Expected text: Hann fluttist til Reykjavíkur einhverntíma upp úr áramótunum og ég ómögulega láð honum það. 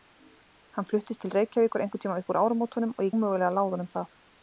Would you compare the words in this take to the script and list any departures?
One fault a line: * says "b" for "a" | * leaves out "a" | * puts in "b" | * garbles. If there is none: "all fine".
all fine